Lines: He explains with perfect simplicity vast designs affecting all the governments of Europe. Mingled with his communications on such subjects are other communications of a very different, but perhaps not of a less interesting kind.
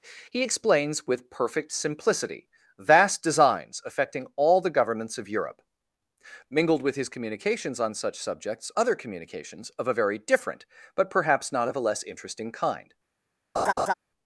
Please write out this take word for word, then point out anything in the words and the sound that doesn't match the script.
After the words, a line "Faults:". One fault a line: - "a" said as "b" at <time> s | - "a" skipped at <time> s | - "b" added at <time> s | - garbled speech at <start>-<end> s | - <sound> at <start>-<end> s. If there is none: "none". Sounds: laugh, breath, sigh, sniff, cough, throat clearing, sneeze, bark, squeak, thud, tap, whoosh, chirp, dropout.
He explains with perfect simplicity vast designs affecting all the governments of Europe. Mingled with his communications on such subjects other communications of a very different, but perhaps not of a less interesting kind.
Faults:
- "are" skipped at 8.7 s
- laugh at 13.6-13.9 s